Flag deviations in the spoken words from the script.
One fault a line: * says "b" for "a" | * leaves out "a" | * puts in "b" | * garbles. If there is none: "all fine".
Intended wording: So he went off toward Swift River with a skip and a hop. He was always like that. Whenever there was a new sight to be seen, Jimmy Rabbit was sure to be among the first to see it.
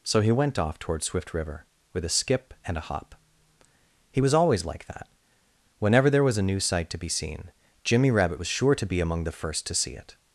all fine